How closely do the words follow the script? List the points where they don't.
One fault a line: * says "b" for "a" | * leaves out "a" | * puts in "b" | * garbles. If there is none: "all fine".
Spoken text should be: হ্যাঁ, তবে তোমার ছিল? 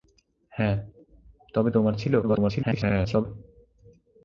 * garbles